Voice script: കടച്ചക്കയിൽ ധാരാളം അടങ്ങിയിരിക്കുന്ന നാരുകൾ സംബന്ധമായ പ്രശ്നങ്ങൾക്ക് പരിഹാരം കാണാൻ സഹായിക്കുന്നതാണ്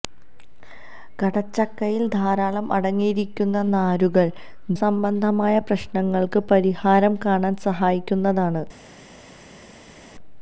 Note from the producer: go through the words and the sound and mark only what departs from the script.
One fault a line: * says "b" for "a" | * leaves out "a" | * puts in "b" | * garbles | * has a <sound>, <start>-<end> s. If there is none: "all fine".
all fine